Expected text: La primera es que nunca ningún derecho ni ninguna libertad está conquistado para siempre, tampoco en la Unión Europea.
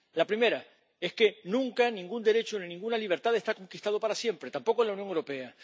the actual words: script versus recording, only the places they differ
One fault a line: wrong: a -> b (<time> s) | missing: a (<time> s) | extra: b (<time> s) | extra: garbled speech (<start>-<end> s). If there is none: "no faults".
no faults